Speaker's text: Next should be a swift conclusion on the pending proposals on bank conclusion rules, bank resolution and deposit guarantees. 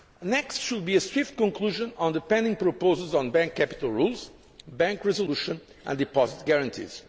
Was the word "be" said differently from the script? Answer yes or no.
no